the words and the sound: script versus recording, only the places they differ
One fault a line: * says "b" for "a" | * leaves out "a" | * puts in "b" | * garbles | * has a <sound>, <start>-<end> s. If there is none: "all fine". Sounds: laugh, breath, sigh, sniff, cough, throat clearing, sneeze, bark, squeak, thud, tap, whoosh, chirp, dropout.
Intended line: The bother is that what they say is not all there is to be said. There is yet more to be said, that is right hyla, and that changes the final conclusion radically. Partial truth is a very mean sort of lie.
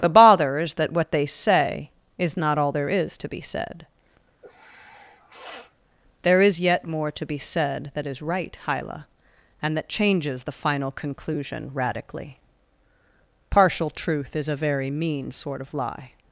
* has a sniff, 4.4-5.7 s